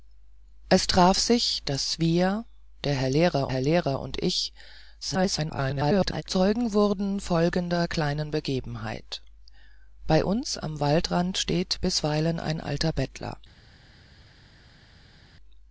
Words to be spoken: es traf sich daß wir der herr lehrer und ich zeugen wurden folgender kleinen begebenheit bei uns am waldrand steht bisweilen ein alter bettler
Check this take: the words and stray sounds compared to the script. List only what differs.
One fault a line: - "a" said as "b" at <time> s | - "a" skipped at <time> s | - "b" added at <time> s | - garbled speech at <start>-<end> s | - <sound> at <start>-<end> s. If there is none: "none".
- "herr lehrer" added at 3.5 s
- garbled speech at 5.0-6.2 s